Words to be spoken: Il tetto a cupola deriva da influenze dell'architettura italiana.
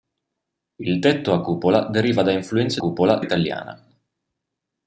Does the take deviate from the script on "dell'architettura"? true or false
true